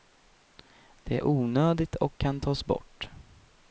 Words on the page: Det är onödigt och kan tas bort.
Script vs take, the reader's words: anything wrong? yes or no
no